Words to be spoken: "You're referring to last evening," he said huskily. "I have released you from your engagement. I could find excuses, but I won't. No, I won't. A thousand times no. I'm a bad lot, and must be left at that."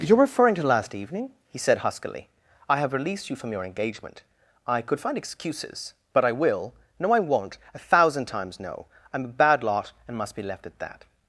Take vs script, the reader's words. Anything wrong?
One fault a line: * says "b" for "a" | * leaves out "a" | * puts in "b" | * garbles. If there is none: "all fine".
* says "will" for "won't"